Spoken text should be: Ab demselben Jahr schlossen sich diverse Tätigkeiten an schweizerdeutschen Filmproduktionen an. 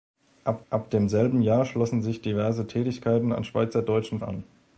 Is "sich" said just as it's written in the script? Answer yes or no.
yes